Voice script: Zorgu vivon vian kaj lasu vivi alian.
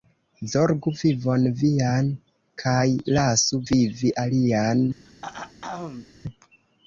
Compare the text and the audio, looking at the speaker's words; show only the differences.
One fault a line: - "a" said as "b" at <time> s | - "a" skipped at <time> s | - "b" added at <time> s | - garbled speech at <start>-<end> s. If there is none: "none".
none